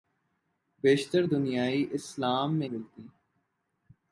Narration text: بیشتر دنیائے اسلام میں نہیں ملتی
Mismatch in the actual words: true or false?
true